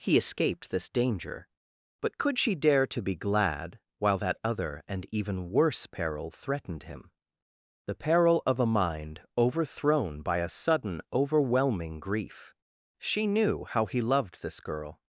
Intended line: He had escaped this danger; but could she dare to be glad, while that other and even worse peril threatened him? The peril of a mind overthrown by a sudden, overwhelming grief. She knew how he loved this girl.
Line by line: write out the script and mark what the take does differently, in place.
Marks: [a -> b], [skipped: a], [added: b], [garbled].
He [skipped: had] escaped this danger; but could she dare to be glad, while that other and even worse peril threatened him? The peril of a mind overthrown by a sudden, overwhelming grief. She knew how he loved this girl.